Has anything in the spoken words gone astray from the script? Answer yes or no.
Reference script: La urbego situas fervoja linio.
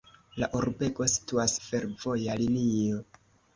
no